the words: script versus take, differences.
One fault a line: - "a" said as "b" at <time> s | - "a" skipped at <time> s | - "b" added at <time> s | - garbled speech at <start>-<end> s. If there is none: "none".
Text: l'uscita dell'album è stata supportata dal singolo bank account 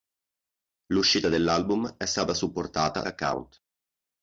- "dal singolo bank" skipped at 3.0 s